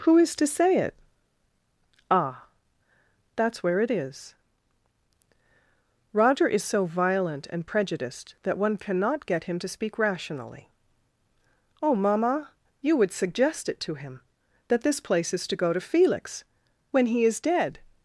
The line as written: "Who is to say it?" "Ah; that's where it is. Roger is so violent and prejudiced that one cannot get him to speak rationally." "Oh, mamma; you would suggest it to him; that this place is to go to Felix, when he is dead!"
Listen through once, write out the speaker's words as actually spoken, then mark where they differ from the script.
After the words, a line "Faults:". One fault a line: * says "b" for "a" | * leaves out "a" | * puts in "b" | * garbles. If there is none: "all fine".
"Who is to say it?" "Ah; that's where it is. Roger is so violent and prejudiced that one cannot get him to speak rationally." "Oh, mamma; you would suggest it to him; that this place is to go to Felix, when he is dead!"
Faults:
all fine